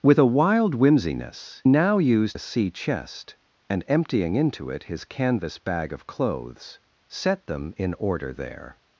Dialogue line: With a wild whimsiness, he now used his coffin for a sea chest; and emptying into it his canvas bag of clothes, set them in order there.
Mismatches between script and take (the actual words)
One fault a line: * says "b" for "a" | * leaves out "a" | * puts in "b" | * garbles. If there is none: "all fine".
* leaves out "he"
* leaves out "his coffin for"